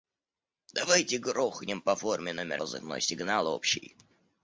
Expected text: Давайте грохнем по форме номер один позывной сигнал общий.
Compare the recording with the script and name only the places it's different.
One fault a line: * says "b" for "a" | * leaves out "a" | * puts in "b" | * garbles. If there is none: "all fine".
* leaves out "один"